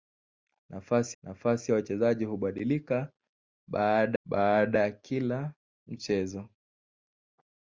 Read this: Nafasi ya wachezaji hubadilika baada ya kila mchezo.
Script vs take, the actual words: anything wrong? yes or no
yes